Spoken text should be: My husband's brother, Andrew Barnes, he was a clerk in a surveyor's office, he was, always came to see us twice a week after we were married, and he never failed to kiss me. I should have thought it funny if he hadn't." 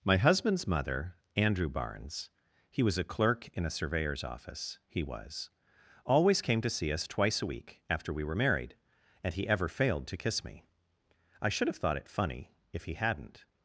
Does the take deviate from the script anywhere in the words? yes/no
yes